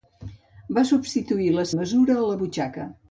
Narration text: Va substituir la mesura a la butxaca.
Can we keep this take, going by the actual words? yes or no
yes